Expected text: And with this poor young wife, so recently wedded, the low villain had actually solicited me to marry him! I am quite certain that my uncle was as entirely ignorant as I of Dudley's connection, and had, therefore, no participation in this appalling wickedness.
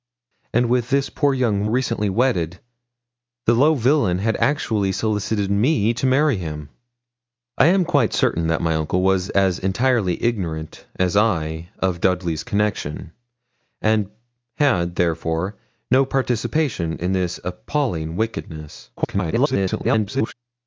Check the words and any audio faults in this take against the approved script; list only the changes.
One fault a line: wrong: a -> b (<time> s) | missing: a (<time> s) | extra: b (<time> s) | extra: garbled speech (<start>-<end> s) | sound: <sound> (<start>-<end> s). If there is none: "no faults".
missing: wife so (1.7 s)
extra: garbled speech (19.0-20.3 s)